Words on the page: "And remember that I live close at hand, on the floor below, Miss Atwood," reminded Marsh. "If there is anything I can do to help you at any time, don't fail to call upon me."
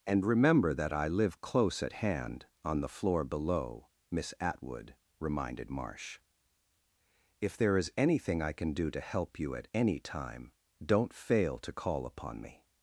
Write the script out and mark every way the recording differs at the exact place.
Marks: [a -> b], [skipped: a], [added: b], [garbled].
"And remember that I live close at hand, on the floor below, Miss Atwood," reminded Marsh. "If there is anything I can do to help you at any time, don't fail to call upon me."